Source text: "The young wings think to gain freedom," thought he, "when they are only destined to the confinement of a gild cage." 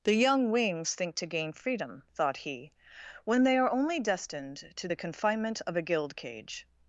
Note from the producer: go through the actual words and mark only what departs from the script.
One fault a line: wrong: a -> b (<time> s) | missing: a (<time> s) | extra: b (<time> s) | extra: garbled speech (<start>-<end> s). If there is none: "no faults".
no faults